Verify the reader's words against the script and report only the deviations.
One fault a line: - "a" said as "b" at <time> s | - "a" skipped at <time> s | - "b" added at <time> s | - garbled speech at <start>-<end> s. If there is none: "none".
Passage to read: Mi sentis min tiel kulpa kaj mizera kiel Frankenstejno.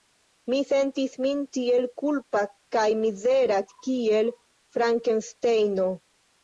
none